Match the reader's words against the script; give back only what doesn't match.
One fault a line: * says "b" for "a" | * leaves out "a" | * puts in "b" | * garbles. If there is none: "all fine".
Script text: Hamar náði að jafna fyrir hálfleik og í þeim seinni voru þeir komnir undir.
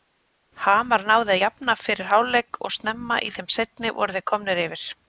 * puts in "snemma"
* says "yfir" for "undir"